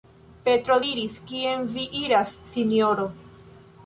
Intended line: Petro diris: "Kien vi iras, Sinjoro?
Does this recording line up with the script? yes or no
yes